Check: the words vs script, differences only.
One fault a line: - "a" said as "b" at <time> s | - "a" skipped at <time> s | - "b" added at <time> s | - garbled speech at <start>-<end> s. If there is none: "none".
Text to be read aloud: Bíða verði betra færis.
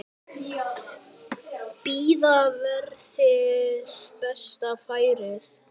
none